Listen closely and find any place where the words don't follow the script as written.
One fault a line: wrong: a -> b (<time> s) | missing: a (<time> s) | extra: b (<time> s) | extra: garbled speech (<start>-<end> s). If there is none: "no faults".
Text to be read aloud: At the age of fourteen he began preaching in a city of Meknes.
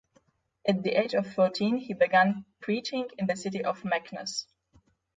wrong: a -> the (3.3 s)